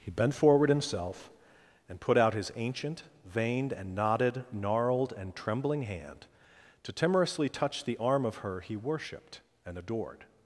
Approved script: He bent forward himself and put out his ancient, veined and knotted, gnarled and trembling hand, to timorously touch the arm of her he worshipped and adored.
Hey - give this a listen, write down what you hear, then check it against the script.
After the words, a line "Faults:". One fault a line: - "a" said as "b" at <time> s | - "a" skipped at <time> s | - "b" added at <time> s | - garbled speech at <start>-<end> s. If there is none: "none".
He bent forward himself and put out his ancient, veined and knotted, gnarled and trembling hand, to timorously touch the arm of her he worshipped and adored.
Faults:
none